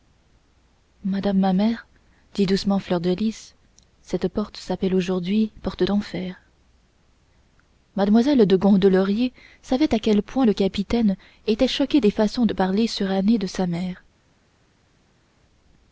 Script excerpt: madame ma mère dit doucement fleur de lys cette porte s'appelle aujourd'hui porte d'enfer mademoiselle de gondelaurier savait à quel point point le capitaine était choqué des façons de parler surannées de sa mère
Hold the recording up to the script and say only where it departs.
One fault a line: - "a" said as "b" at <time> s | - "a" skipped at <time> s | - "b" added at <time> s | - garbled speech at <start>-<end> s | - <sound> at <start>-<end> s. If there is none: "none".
- "point" skipped at 10.5 s